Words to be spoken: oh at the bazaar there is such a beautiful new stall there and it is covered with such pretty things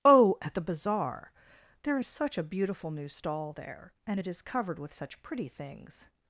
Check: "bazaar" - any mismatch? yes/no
no